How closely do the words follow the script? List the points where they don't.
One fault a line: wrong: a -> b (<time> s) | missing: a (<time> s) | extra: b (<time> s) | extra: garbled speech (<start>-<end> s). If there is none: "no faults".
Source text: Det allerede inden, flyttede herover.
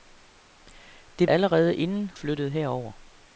no faults